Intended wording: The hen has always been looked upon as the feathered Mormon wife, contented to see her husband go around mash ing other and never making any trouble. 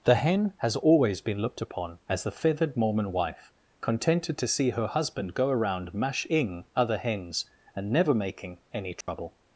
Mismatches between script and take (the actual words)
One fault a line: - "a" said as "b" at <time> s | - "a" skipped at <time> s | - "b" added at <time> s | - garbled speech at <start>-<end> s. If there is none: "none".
- "hens" added at 7.0 s